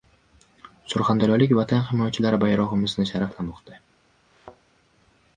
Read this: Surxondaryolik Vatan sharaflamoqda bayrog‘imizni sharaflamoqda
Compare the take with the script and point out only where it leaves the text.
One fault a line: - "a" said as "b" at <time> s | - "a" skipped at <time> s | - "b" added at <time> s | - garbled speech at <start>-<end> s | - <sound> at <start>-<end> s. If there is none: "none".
- "sharaflamoqda" said as "himoyachilari" at 1.9 s
- thud at 4.3-4.6 s